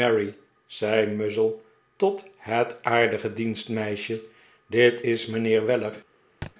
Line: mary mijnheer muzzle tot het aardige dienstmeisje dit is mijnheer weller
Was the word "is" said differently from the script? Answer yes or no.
no